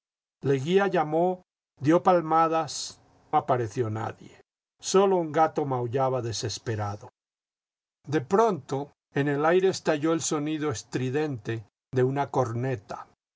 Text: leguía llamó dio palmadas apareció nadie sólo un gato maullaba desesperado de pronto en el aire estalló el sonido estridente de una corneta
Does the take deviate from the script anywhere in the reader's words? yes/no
no